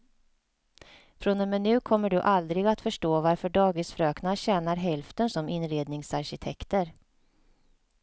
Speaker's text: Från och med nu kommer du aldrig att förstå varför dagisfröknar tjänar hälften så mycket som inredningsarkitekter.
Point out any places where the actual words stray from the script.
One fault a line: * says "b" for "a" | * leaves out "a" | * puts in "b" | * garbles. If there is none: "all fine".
* leaves out "så mycket"